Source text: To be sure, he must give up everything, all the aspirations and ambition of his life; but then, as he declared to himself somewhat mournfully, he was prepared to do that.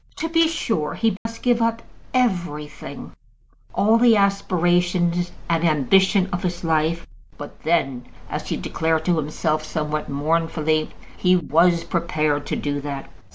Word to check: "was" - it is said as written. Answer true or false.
true